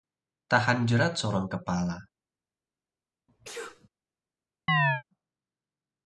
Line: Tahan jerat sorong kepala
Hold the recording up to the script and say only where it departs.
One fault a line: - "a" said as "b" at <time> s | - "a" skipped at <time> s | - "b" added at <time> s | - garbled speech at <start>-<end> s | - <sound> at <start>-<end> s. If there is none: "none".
- sneeze at 3.3-3.9 s
- chirp at 4.7-5.0 s